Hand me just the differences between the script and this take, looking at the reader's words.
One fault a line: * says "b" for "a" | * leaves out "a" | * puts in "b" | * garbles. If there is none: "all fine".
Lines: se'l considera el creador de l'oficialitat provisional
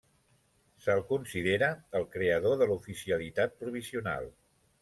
all fine